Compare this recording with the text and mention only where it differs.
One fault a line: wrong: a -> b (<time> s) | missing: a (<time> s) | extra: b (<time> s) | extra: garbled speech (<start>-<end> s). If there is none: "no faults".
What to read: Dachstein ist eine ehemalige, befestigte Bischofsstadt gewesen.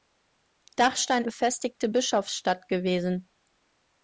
missing: ist eine ehemalige (1.2 s)